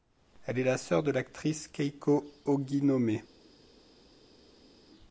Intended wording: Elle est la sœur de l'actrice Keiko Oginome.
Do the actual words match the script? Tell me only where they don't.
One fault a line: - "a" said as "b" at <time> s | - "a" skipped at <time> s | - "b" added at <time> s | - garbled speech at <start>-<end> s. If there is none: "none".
none